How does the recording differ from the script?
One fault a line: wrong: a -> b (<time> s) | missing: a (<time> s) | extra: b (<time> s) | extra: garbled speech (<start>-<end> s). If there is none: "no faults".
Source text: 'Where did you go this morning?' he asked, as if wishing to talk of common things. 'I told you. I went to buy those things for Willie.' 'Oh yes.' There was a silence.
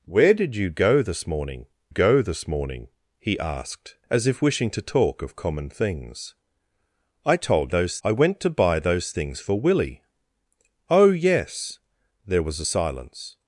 extra: go this morning (1.9 s)
wrong: you -> those (7.7 s)